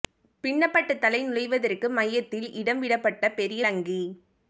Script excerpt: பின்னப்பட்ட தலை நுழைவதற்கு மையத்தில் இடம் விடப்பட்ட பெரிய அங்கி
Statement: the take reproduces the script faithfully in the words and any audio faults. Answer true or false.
true